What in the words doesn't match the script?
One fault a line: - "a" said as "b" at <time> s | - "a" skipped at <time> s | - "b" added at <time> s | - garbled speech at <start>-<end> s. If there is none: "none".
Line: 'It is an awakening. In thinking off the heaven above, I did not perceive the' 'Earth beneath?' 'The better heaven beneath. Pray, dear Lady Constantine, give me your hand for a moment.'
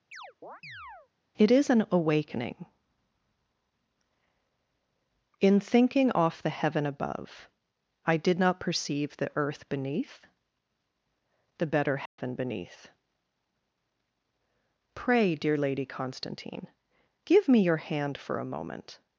none